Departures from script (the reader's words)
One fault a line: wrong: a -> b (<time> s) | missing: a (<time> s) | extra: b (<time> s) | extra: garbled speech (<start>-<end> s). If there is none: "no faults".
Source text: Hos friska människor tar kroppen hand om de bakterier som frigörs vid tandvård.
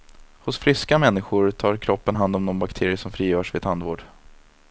no faults